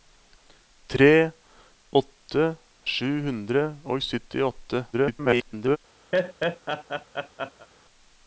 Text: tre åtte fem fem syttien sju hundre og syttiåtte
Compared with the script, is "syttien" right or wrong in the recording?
wrong